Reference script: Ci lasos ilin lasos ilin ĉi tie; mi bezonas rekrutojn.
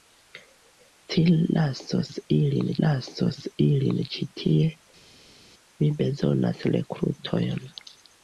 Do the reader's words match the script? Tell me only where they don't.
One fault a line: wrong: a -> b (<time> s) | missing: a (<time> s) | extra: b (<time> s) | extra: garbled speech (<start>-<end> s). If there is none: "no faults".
no faults